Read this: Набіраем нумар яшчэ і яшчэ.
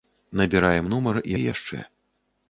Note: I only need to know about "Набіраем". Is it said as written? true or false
true